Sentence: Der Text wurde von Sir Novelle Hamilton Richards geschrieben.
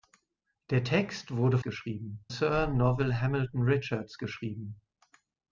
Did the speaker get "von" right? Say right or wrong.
wrong